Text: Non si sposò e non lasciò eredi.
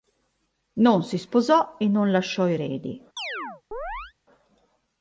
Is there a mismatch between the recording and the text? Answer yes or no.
no